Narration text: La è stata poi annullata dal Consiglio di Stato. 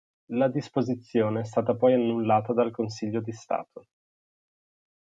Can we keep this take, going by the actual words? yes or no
no